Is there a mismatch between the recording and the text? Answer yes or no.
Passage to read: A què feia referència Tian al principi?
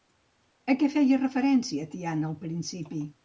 no